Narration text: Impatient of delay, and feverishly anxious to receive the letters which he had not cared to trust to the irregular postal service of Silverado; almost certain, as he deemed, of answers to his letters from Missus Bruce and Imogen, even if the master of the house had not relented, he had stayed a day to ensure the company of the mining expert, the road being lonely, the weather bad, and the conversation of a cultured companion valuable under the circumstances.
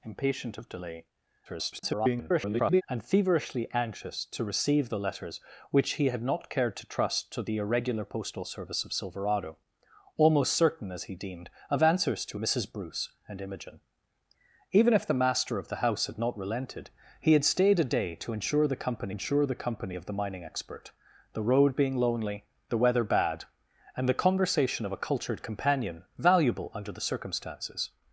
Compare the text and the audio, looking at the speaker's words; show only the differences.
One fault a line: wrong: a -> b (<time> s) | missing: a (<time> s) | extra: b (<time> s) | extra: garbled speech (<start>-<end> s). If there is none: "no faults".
extra: garbled speech (1.4-2.8 s)
missing: his letters from (12.4 s)
extra: ensure the company (19.1 s)